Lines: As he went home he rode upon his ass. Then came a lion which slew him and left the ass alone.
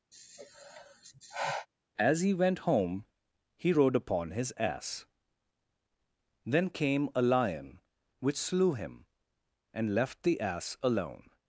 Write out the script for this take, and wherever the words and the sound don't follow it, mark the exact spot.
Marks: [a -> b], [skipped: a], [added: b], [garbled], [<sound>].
[sigh] As he went home he rode upon his ass. Then came a lion which slew him and left the ass alone.